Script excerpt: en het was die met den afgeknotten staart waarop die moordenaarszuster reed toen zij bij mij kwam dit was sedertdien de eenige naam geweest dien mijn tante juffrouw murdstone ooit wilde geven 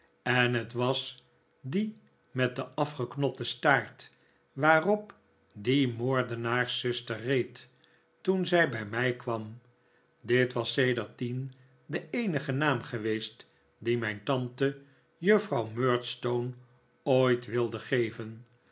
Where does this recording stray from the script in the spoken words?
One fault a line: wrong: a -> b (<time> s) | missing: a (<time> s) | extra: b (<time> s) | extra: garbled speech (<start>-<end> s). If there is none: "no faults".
no faults